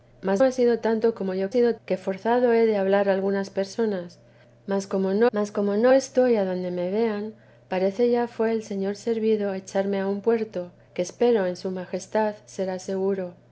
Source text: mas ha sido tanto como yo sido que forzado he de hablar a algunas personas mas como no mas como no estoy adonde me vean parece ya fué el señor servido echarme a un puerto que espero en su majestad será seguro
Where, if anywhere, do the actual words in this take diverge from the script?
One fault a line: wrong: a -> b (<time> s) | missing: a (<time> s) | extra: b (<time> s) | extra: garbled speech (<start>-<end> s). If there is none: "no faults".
no faults